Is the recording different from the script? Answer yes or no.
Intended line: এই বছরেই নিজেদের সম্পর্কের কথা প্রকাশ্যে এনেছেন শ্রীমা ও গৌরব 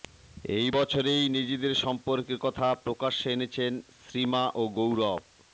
no